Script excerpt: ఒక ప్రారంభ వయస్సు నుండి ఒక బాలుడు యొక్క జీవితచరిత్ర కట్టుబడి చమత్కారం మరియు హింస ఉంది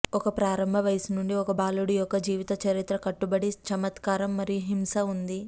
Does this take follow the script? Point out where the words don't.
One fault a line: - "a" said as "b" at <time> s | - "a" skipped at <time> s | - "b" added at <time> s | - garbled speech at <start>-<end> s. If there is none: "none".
none